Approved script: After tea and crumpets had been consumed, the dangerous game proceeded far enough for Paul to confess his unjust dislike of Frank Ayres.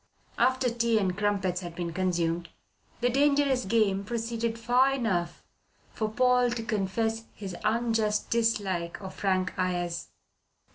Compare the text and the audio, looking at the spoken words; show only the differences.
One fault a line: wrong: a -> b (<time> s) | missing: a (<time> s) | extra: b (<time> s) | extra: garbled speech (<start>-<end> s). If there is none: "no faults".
no faults